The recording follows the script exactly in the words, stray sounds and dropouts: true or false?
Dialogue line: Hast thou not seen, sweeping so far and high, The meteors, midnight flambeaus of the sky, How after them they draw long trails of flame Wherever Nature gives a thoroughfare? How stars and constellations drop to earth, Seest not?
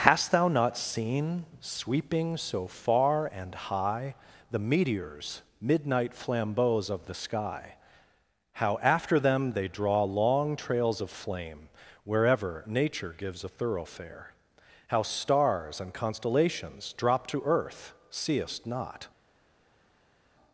true